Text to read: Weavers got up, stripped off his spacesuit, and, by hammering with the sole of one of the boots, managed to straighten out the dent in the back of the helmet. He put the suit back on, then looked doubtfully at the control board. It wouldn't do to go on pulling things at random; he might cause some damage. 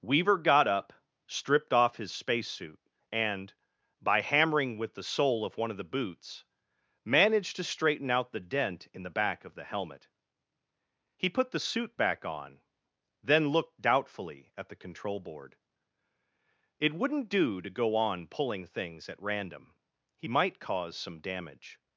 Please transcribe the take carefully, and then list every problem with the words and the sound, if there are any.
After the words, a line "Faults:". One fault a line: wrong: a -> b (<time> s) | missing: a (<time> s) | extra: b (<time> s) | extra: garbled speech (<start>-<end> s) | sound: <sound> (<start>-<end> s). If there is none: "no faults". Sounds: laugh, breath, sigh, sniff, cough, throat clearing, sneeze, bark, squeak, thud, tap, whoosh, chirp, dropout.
Weaver got up, stripped off his spacesuit, and, by hammering with the sole of one of the boots, managed to straighten out the dent in the back of the helmet. He put the suit back on, then looked doubtfully at the control board. It wouldn't do to go on pulling things at random; he might cause some damage.
Faults:
wrong: Weavers -> Weaver (0.0 s)